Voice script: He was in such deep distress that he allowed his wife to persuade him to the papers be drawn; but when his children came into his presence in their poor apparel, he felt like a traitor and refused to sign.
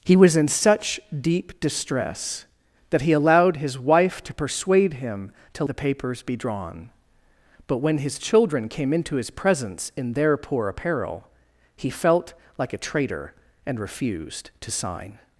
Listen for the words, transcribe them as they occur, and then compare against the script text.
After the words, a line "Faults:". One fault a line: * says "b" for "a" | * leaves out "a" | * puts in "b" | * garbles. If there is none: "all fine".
He was in such deep distress that he allowed his wife to persuade him to the papers be drawn; but when his children came into his presence in their poor apparel, he felt like a traitor and refused to sign.
Faults:
all fine